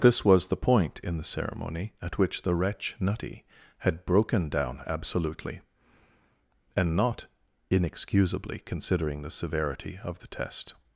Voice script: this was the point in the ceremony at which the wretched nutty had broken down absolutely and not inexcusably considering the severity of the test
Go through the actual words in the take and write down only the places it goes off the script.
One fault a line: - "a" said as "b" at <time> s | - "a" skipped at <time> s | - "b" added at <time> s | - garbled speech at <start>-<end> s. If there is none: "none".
- "wretched" said as "wretch" at 2.5 s